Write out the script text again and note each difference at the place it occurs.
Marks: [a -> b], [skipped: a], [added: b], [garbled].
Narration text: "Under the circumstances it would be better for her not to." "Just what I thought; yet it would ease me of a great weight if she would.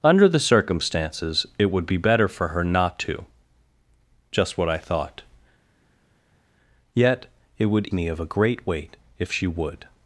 "Under the circumstances it would be better for her not to." "Just what I thought; yet it would [skipped: ease] me of a great weight if she would.